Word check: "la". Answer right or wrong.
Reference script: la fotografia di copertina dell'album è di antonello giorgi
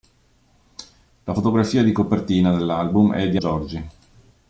right